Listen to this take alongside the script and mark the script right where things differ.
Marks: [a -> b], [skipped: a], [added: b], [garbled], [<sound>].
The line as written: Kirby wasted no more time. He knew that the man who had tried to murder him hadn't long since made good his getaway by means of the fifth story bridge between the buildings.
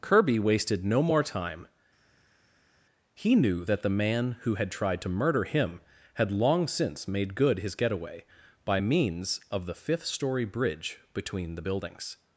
Kirby wasted no more time. He knew that the man who had tried to murder him [hadn't -> had] long since made good his getaway by means of the fifth story bridge between the buildings.